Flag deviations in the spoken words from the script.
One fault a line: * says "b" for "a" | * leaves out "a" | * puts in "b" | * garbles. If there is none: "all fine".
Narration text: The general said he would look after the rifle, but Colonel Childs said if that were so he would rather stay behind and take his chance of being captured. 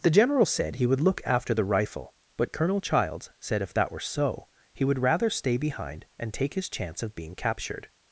all fine